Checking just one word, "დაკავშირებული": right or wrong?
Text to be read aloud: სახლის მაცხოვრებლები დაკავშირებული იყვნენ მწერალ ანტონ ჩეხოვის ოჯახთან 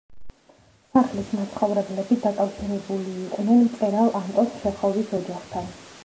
right